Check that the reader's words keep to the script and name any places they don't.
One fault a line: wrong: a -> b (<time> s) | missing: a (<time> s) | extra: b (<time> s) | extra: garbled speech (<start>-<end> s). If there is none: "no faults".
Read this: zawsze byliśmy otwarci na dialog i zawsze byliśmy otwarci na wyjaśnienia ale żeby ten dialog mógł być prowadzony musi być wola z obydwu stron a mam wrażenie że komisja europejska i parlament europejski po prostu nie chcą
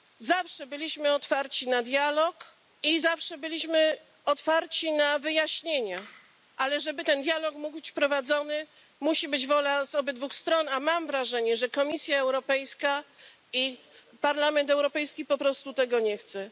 extra: tego (15.7 s)